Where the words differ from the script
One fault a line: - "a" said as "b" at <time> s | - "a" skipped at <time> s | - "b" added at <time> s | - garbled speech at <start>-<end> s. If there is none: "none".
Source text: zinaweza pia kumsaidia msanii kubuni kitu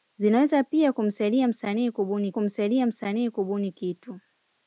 - "kumsaidia msanii kubuni" added at 2.3 s